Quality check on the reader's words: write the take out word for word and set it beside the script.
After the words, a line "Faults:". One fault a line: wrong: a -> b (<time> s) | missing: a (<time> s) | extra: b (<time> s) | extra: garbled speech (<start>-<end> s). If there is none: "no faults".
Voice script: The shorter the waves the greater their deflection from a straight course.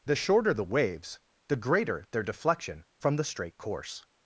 The shorter the waves the greater their deflection from the straight course.
Faults:
wrong: a -> the (3.2 s)